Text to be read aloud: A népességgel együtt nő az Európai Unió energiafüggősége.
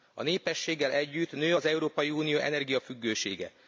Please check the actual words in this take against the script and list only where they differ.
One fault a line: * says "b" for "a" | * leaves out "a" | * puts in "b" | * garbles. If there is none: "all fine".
all fine